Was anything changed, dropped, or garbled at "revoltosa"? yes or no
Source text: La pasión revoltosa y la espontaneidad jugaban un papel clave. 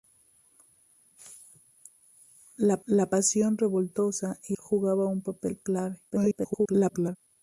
no